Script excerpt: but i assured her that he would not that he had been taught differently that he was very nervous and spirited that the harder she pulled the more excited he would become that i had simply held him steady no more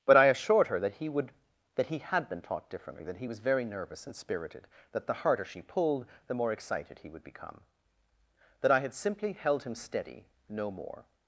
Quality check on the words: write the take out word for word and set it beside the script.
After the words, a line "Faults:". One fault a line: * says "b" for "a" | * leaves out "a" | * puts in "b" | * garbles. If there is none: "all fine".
but i assured her that he would that he had been taught differently that he was very nervous and spirited that the harder she pulled the more excited he would become that i had simply held him steady no more
Faults:
* leaves out "not"